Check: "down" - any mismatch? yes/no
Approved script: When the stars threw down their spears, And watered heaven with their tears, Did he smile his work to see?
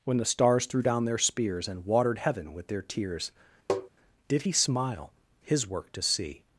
no